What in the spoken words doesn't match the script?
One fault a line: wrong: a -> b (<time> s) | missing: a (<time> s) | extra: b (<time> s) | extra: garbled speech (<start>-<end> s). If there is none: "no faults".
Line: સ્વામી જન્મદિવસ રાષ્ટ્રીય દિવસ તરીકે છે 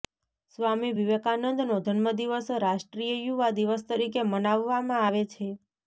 extra: વિવેકાનંદનો (0.9 s)
extra: યુવા (3.2 s)
extra: મનાવવામાં આવે (4.3 s)